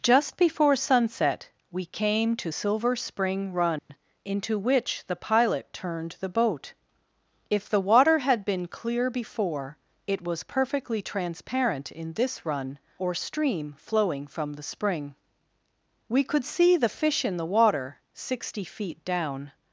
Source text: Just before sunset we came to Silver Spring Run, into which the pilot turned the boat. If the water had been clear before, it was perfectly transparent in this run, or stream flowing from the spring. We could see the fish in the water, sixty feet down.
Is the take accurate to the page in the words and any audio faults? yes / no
no